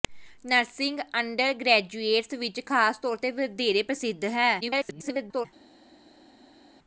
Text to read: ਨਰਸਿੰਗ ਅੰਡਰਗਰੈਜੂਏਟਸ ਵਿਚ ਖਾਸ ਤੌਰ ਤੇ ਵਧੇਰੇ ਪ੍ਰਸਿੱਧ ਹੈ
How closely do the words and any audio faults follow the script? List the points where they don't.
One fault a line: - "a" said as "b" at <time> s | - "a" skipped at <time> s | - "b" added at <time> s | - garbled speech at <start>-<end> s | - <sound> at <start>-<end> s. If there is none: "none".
- garbled speech at 4.6-5.5 s